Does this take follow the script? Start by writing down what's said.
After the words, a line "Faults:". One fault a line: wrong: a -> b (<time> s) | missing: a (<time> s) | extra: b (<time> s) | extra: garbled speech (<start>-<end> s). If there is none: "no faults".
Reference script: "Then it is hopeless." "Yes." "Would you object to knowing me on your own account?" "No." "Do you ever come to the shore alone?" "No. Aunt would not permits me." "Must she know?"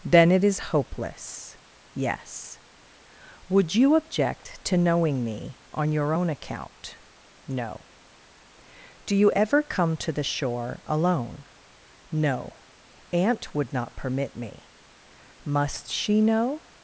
"Then it is hopeless." "Yes." "Would you object to knowing me on your own account?" "No." "Do you ever come to the shore alone?" "No. Aunt would not permit me." "Must she know?"
Faults:
wrong: permits -> permit (14.0 s)